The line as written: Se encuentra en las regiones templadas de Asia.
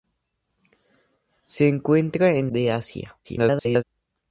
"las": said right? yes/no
no